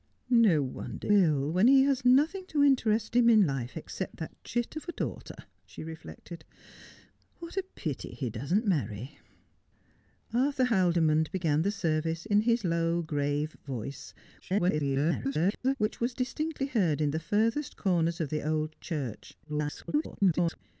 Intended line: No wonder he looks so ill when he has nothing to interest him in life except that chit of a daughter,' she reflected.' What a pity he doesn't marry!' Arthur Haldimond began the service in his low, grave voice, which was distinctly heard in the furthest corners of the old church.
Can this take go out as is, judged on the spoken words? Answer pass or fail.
fail